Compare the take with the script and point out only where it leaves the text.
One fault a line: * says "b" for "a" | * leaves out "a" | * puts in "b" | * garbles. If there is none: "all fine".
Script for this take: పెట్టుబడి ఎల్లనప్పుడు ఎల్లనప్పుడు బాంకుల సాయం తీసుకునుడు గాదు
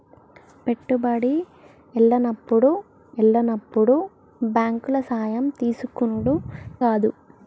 all fine